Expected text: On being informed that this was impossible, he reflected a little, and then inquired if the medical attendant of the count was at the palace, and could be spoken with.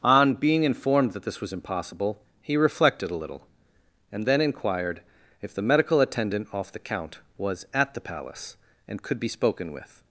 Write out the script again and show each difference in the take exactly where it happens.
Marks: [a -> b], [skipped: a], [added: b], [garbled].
On being informed that this was impossible, he reflected a little, and then inquired if the medical attendant [of -> off] the count was at the palace, and could be spoken with.